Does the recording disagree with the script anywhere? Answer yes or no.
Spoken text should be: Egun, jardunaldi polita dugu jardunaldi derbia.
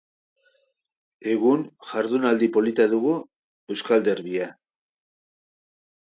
yes